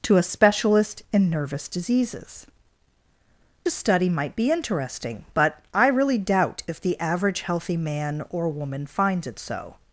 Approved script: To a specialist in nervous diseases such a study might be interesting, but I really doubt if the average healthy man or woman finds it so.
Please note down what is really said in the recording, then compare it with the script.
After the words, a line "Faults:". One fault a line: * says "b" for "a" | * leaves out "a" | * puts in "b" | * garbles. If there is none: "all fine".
To a specialist in nervous diseases a study might be interesting, but I really doubt if the average healthy man or woman finds it so.
Faults:
* leaves out "such"